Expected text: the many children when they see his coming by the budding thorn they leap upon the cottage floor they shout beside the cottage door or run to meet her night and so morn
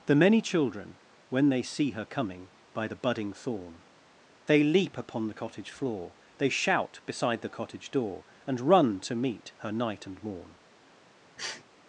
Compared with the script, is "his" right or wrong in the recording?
wrong